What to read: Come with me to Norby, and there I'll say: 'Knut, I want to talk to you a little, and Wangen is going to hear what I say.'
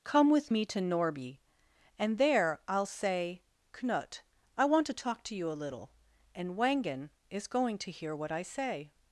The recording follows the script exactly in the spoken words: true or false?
true